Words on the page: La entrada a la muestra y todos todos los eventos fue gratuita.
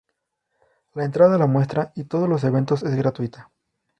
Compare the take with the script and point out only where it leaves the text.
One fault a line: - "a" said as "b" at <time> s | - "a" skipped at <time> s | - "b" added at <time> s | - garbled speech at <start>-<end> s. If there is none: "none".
- "todos" skipped at 2.3 s
- "fue" said as "es" at 2.8 s